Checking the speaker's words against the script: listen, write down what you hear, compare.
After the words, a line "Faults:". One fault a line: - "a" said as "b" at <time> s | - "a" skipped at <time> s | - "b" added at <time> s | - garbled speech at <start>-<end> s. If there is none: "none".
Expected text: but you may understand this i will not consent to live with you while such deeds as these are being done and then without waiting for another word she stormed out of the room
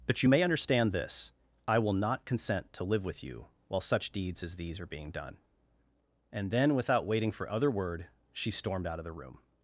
but you may understand this i will not consent to live with you while such deeds as these are being done and then without waiting for other word she stormed out of the room
Faults:
- "another" said as "other" at 7.5 s